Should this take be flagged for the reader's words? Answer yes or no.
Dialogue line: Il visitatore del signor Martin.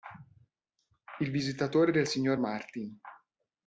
no